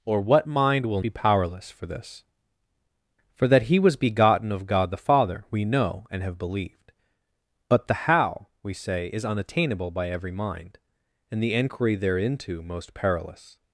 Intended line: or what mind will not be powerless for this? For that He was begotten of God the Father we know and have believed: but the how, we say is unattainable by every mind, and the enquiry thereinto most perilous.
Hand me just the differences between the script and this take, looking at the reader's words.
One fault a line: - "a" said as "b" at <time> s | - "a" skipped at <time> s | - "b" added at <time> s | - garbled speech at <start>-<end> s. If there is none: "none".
- "not" skipped at 1.0 s